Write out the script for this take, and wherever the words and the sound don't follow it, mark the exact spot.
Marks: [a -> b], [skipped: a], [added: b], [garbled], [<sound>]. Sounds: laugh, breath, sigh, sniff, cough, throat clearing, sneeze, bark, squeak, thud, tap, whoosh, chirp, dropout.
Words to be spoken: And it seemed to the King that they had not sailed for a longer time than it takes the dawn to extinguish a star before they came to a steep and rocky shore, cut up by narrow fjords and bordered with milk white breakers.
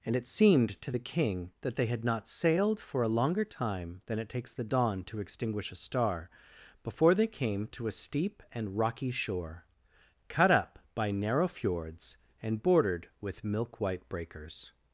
And it seemed to the King that they had not sailed for a longer time than it takes the dawn to extinguish a star before they came to a steep and rocky shore, cut up by narrow fjords and bordered with milk white breakers.